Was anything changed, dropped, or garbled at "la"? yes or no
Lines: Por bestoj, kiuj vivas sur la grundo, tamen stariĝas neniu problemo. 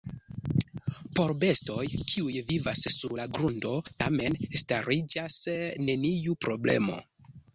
no